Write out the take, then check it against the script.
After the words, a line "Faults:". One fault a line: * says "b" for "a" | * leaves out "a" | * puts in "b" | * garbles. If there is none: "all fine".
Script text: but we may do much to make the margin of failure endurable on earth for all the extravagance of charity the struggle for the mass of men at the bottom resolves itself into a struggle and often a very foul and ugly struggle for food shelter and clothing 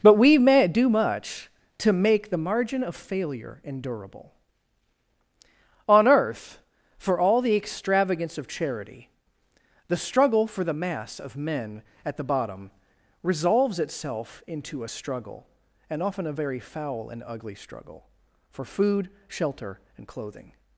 but we may do much to make the margin of failure endurable on earth for all the extravagance of charity the struggle for the mass of men at the bottom resolves itself into a struggle and often a very foul and ugly struggle for food shelter and clothing
Faults:
all fine